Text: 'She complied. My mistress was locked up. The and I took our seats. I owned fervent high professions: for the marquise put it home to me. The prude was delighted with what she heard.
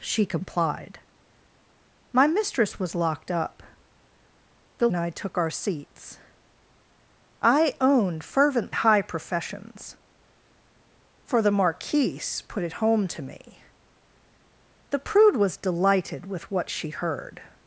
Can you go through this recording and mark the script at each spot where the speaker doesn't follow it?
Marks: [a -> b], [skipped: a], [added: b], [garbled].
'She complied. My mistress was locked up. The and I took our seats. I owned fervent high professions: for the marquise put it home to me. The prude was delighted with what she heard.